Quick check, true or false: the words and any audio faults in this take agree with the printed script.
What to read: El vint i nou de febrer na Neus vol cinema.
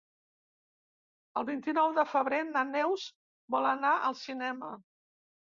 false